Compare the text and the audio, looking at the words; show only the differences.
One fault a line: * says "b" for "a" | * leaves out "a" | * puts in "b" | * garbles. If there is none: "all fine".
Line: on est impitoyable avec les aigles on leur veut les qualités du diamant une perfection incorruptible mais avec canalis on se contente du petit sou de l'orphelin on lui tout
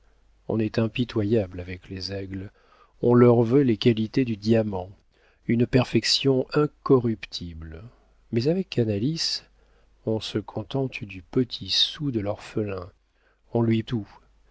all fine